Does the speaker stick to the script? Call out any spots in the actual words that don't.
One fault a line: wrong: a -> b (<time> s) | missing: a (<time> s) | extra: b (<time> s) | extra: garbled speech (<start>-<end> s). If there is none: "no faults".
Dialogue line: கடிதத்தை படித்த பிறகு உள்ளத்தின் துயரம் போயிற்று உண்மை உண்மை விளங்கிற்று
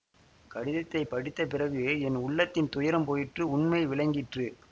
extra: என் (2.0 s)
missing: உண்மை (3.8 s)